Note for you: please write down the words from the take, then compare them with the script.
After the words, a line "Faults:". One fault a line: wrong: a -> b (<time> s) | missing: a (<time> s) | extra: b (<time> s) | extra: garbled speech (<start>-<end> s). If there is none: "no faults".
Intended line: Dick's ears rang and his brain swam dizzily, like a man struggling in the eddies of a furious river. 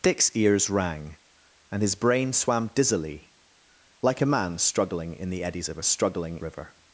Dick's ears rang and his brain swam dizzily, like a man struggling in the eddies of a struggling river.
Faults:
wrong: furious -> struggling (5.8 s)